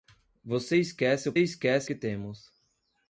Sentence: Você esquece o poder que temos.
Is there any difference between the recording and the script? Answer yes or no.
yes